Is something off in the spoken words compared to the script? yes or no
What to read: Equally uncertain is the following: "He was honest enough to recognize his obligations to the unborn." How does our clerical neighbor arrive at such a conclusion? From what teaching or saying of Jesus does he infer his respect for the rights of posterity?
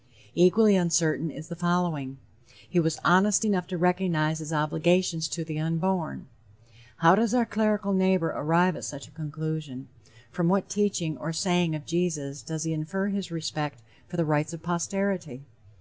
no